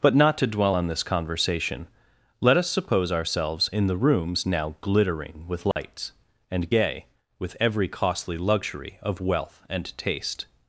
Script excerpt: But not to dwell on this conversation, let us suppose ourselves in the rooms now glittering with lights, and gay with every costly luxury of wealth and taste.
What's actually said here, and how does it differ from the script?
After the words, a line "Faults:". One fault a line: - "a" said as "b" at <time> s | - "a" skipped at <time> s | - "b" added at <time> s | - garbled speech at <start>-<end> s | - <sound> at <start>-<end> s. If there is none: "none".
But not to dwell on this conversation, let us suppose ourselves in the rooms now glittering with lights, and gay with every costly luxury of wealth and taste.
Faults:
- dropout at 5.7-5.8 s